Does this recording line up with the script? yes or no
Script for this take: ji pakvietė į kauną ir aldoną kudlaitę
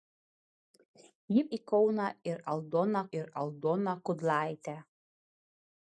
no